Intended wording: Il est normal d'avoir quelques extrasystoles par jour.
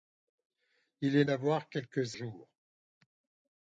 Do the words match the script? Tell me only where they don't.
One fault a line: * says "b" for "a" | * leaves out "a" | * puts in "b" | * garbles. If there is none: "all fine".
* leaves out "normal"
* leaves out "extrasystoles par"